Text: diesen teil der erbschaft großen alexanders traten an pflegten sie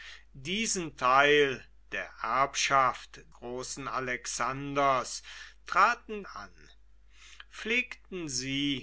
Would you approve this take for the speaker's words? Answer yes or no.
yes